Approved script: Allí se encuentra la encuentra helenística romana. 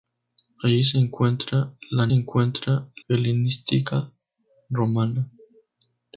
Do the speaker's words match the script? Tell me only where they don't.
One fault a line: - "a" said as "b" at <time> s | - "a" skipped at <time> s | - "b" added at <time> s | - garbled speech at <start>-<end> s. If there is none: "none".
none